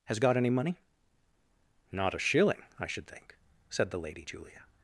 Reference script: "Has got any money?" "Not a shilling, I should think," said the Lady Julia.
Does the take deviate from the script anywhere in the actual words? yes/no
no